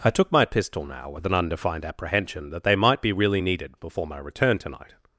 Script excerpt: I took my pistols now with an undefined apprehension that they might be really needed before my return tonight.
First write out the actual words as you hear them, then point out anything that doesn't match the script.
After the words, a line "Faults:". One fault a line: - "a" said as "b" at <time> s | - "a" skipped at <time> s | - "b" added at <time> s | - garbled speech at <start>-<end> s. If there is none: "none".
I took my pistol now with an undefined apprehension that they might be really needed before my return tonight.
Faults:
- "pistols" said as "pistol" at 0.5 s